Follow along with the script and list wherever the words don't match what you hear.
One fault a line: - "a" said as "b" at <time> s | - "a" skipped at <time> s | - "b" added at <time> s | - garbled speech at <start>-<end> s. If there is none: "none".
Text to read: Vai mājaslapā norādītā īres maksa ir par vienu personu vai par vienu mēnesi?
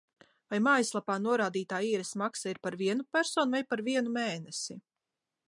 none